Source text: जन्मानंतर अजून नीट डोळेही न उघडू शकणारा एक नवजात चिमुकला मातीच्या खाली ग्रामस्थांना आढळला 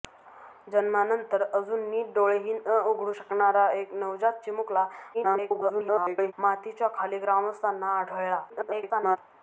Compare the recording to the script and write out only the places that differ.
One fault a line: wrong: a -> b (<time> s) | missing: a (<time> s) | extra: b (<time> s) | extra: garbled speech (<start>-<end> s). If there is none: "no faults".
extra: garbled speech (5.1-6.3 s)
extra: garbled speech (8.5-9.2 s)